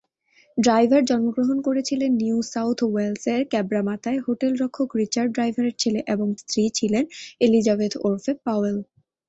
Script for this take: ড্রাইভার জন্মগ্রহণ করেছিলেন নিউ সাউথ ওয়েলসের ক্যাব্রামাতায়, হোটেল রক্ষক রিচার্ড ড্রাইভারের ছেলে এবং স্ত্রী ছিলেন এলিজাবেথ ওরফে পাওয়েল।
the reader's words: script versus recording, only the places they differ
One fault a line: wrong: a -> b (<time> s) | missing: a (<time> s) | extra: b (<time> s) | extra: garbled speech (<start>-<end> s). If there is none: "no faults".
no faults